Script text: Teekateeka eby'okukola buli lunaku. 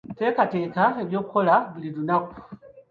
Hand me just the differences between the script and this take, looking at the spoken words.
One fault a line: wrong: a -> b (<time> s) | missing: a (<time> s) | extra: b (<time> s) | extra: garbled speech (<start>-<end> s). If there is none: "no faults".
no faults